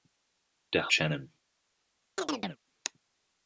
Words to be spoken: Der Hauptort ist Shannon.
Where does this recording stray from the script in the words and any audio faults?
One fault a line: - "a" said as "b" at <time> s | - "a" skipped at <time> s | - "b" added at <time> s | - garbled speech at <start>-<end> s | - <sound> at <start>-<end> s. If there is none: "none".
- "Hauptort ist" skipped at 0.9 s
- chirp at 2.2-2.6 s